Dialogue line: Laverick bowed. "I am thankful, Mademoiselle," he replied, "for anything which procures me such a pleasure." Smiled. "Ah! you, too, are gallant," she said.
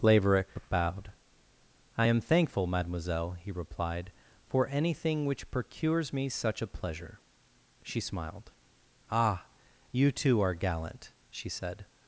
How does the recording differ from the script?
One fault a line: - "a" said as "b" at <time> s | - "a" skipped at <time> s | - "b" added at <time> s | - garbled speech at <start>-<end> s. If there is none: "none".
- "She" added at 7.8 s